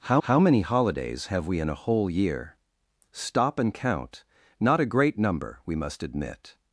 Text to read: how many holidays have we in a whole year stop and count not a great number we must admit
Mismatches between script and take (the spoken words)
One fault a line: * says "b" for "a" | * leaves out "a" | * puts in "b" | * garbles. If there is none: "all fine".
* puts in "how"